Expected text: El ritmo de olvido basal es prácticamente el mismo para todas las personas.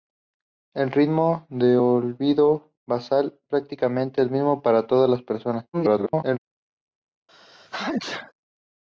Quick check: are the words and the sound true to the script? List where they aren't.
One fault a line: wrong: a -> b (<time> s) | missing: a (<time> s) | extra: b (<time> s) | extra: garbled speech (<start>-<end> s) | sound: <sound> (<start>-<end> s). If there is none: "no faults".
missing: es (3.4 s)
extra: garbled speech (5.7-6.4 s)
sound: sneeze (7.3-8.3 s)